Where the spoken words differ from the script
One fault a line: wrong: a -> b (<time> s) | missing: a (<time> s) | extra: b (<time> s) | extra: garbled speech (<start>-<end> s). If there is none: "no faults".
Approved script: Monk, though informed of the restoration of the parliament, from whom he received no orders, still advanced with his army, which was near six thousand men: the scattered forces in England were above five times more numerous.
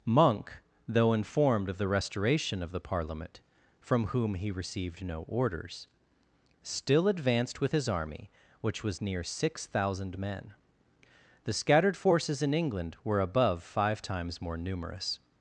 no faults